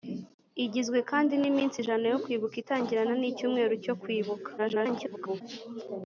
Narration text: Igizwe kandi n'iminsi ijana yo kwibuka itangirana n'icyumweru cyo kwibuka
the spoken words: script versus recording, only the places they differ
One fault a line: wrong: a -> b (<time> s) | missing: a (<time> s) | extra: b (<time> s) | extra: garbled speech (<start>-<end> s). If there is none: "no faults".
extra: garbled speech (4.6-5.4 s)